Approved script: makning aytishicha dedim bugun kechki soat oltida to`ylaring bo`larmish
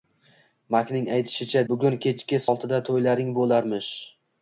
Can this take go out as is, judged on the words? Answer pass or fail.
fail